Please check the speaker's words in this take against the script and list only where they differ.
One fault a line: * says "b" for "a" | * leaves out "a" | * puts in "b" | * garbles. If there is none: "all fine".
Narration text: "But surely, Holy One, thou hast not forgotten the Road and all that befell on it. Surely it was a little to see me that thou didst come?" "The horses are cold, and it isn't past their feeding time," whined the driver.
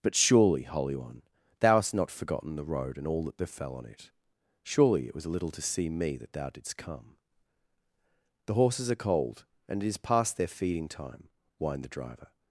* says "is" for "isn't"